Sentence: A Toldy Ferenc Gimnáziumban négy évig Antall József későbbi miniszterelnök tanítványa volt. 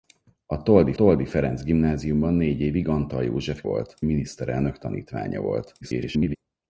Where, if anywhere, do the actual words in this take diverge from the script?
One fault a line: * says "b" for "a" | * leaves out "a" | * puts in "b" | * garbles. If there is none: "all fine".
* puts in "Toldy"
* says "volt" for "későbbi"
* garbles